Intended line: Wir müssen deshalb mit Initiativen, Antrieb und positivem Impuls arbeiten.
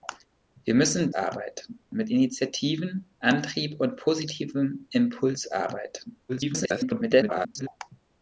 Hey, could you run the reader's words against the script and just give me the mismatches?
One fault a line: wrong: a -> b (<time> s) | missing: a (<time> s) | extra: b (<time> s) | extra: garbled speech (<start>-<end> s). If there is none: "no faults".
wrong: deshalb -> arbeiten (1.1 s)
extra: garbled speech (6.3-7.7 s)